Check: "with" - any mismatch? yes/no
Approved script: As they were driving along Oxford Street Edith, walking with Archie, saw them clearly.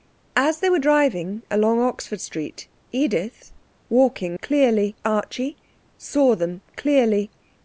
yes